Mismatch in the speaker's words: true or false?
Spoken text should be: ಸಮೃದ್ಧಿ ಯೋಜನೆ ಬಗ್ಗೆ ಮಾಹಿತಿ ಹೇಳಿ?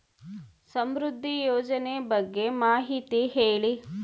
false